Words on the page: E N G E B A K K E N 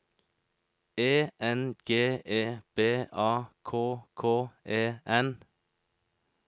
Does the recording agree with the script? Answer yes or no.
yes